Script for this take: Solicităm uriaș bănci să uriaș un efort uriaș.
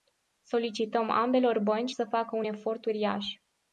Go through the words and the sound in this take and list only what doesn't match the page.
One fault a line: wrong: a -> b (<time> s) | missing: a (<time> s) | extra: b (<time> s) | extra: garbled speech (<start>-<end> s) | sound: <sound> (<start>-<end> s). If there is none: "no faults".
wrong: uriaș -> ambelor (1.1 s)
wrong: uriaș -> facă (2.0 s)